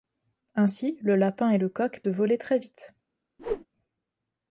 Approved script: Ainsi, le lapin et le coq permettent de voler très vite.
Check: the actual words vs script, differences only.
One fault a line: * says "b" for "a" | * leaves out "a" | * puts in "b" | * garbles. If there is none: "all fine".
* leaves out "permettent"